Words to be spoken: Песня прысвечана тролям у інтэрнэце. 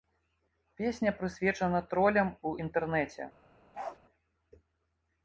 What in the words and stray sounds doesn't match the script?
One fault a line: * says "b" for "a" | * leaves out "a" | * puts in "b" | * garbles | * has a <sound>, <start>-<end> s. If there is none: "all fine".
* has a bark, 3.7-4.0 s